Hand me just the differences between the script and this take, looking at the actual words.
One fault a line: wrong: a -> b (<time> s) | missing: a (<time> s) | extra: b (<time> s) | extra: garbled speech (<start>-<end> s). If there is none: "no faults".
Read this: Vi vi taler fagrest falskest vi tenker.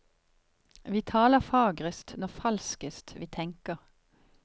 missing: vi (1.0 s)
extra: når (2.2 s)